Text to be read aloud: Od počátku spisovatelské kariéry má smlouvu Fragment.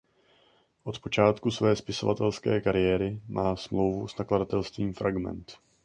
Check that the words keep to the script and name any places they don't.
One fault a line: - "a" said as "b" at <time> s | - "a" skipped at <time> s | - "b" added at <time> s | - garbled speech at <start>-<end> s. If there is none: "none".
- "své" added at 1.5 s
- "s nakladatelstvím" added at 4.0 s